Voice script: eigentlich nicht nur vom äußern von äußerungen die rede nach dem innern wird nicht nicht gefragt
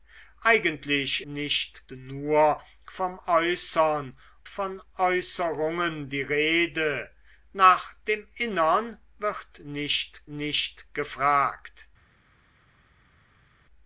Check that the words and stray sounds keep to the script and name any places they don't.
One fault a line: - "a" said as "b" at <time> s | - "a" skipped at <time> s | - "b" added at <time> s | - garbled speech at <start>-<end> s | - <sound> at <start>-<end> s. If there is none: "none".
none